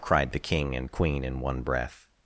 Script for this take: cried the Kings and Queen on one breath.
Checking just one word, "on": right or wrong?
wrong